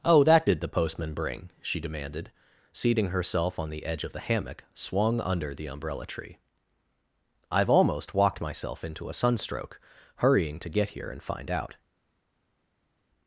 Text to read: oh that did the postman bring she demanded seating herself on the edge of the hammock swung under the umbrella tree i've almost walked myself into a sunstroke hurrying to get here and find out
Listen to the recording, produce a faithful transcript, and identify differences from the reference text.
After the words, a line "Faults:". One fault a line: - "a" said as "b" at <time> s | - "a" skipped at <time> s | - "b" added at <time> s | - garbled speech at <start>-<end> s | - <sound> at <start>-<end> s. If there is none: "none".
oh that did the postman bring she demanded seating herself on the edge of the hammock swung under the umbrella tree i've almost walked myself into a sunstroke hurrying to get here and find out
Faults:
none